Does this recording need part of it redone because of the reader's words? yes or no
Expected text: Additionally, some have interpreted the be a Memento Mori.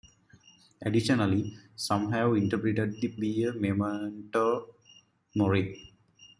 no